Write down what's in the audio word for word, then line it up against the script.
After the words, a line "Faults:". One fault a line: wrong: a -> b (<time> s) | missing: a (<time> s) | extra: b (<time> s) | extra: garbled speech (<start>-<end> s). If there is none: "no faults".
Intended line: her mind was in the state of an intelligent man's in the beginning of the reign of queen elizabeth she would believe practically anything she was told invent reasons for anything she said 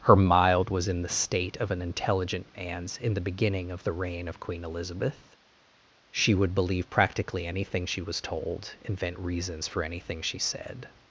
her mild was in the state of an intelligent man's in the beginning of the reign of queen elizabeth she would believe practically anything she was told invent reasons for anything she said
Faults:
wrong: mind -> mild (0.1 s)